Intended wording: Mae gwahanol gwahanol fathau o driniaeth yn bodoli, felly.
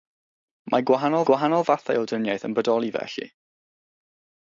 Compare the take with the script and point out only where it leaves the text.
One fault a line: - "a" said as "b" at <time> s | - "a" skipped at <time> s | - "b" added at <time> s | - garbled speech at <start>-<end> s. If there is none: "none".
none